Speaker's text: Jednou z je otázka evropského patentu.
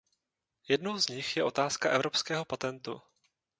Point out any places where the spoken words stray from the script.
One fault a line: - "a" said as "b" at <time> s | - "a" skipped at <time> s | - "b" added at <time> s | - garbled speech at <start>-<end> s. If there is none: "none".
- "nich" added at 1.1 s